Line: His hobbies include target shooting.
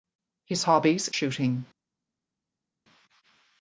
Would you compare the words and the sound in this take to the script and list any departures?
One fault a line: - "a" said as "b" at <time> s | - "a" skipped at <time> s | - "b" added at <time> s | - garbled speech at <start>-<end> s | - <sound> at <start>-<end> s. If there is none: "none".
- "include target" skipped at 1.1 s